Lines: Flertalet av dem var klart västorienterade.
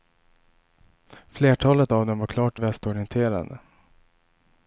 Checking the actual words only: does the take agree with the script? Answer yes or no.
yes